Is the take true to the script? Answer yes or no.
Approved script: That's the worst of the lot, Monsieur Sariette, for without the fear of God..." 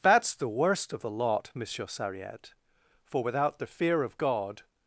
yes